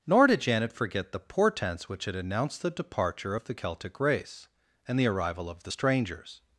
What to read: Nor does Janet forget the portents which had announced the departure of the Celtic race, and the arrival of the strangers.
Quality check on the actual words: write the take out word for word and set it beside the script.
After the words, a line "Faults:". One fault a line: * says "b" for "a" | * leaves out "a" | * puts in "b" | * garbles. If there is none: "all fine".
Nor did Janet forget the portents which had announced the departure of the Celtic race, and the arrival of the strangers.
Faults:
* says "did" for "does"